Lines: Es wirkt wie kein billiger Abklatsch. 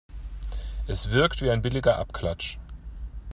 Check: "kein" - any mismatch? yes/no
yes